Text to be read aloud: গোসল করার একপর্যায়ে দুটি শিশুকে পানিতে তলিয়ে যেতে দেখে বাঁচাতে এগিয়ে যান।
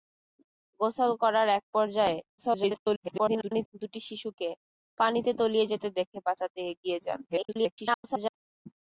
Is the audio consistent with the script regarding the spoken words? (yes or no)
no